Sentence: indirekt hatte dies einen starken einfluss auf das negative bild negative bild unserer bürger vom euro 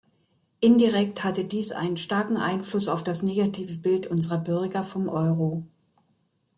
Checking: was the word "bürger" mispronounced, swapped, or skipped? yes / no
no